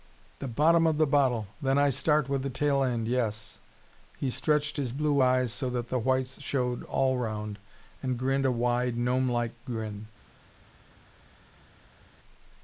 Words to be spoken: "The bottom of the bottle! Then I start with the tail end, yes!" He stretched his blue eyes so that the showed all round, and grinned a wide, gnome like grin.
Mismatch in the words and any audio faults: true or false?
true